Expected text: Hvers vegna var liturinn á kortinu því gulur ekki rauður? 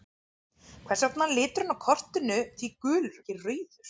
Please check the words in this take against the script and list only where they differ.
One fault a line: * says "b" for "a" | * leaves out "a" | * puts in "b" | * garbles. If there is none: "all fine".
all fine